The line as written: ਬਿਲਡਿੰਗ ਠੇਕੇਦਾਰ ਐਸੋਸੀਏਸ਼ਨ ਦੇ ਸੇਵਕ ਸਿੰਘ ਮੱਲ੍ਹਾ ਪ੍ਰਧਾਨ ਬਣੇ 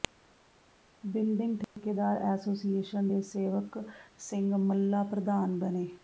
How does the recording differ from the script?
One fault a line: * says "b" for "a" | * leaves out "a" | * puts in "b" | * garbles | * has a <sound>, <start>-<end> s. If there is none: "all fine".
* has a dropout, 1.6-1.8 s